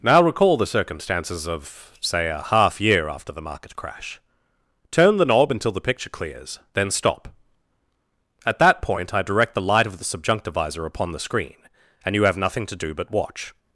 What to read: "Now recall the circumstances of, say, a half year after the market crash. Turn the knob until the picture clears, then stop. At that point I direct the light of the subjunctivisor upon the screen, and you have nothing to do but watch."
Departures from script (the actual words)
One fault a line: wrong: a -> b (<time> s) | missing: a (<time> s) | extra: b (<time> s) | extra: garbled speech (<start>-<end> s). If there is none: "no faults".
no faults